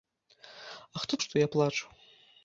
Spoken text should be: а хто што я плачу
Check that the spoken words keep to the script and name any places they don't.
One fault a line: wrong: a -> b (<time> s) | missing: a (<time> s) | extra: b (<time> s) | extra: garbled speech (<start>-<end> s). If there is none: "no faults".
no faults